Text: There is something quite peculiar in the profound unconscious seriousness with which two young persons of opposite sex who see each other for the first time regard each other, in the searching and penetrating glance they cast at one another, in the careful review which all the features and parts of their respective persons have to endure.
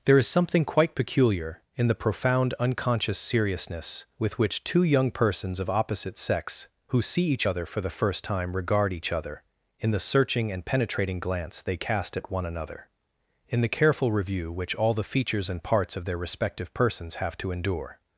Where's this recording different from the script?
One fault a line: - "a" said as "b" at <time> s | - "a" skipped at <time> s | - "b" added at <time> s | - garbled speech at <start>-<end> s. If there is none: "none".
none